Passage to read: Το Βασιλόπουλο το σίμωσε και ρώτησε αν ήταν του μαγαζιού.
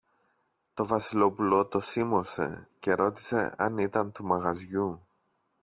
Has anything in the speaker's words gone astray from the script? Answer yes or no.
no